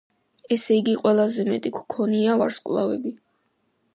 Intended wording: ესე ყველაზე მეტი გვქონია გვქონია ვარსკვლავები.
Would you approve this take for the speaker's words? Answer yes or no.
no